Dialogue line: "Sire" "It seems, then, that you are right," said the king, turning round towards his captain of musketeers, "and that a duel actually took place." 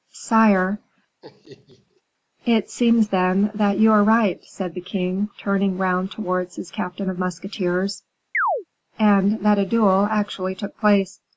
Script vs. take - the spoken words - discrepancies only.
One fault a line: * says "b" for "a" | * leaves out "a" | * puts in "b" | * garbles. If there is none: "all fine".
all fine